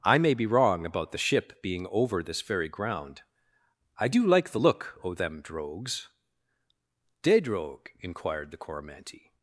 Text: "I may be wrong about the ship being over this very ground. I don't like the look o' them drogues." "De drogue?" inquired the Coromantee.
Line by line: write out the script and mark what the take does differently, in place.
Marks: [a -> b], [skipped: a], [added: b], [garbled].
"I may be wrong about the ship being over this very ground. I [don't -> do] like the look o' them drogues." "De drogue?" inquired the Coromantee.